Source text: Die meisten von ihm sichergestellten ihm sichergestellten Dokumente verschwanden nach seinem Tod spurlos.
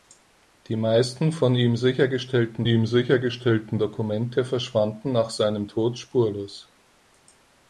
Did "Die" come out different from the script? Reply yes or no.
no